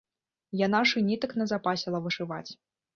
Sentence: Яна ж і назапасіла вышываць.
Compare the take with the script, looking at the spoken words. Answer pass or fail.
fail